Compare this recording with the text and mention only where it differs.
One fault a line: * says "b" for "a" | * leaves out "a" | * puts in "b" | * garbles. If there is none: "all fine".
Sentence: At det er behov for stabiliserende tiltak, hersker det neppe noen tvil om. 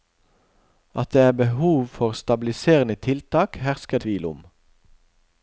* leaves out "det neppe noen"